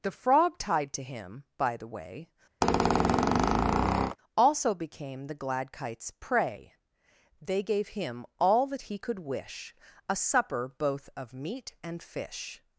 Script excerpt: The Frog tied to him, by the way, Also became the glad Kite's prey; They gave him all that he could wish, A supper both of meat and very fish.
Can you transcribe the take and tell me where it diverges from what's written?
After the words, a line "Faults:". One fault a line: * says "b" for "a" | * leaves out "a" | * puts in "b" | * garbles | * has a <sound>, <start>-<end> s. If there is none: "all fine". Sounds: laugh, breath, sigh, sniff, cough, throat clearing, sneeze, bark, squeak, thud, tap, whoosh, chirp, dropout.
The Frog tied to him, by the way, Also became the glad Kite's prey; They gave him all that he could wish, A supper both of meat and fish.
Faults:
* has a squeak, 2.6-4.2 s
* leaves out "very"